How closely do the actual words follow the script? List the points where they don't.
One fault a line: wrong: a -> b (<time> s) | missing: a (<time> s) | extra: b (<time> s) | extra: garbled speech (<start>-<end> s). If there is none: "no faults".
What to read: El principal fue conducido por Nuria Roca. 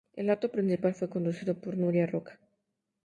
extra: acto (0.3 s)